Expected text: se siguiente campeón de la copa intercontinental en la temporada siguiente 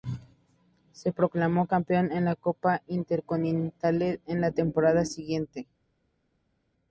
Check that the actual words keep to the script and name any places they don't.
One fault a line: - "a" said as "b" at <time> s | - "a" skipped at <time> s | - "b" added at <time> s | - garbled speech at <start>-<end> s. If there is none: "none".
- "siguiente" said as "proclamó" at 1.1 s